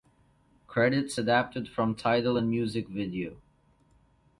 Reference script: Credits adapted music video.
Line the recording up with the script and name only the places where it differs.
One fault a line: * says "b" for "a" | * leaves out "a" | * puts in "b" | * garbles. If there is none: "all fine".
* puts in "from Tidal and"